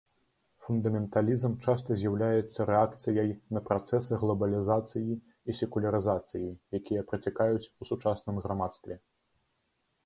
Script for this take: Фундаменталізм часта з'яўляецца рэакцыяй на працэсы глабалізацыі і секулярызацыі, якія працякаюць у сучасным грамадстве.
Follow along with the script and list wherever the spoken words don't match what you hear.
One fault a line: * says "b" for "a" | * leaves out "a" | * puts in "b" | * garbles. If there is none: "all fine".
all fine